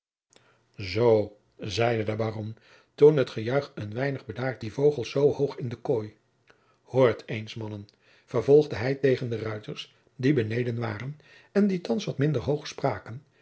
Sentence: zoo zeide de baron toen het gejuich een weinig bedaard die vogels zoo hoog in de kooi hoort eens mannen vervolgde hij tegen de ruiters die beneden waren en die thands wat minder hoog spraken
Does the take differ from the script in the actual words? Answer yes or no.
no